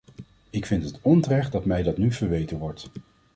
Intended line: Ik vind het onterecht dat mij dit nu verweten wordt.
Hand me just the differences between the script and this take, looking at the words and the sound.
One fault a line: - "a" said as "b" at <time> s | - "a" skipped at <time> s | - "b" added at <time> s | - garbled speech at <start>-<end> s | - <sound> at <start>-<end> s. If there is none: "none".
- "dit" said as "dat" at 1.8 s